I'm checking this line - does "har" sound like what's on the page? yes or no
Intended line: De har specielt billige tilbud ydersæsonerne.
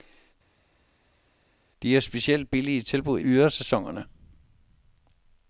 yes